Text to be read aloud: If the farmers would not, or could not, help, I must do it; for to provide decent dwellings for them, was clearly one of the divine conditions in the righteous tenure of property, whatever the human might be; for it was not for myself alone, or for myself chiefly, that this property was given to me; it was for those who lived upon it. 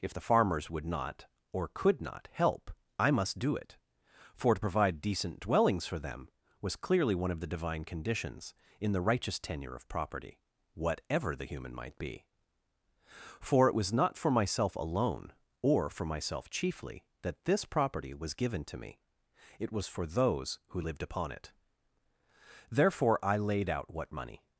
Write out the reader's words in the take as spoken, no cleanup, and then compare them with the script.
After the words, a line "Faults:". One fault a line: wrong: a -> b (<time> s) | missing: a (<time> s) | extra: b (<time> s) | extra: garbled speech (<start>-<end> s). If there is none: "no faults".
If the farmers would not, or could not, help, I must do it; for to provide decent dwellings for them, was clearly one of the divine conditions in the righteous tenure of property, whatever the human might be; for it was not for myself alone, or for myself chiefly, that this property was given to me; it was for those who lived upon it. Therefore I laid out what money
Faults:
extra: Therefore I laid out what money (22.7 s)